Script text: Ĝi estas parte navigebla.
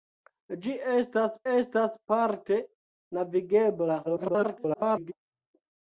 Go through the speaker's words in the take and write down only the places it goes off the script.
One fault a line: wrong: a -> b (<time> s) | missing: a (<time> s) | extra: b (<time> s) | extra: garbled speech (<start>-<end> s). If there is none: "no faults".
extra: estas (1.5 s)
extra: garbled speech (4.0-5.1 s)